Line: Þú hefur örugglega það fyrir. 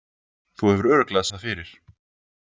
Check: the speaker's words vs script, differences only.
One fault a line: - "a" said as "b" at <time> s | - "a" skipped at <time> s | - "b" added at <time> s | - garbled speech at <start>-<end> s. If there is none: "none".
none